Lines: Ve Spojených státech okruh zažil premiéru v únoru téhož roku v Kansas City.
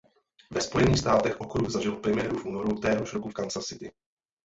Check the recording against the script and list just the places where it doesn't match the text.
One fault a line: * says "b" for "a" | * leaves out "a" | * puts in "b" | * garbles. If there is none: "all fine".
all fine